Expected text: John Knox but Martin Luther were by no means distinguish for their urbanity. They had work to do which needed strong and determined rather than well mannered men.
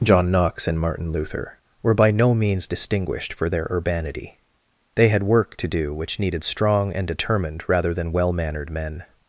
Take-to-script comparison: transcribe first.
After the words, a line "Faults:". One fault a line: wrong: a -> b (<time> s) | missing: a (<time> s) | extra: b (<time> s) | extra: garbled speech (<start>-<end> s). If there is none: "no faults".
John Knox and Martin Luther were by no means distinguished for their urbanity. They had work to do which needed strong and determined rather than well mannered men.
Faults:
wrong: but -> and (0.7 s)
wrong: distinguish -> distinguished (2.7 s)